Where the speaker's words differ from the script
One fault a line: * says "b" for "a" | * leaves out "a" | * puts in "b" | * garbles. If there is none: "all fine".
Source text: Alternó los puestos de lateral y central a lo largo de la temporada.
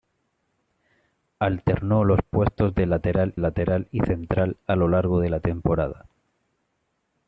* puts in "lateral"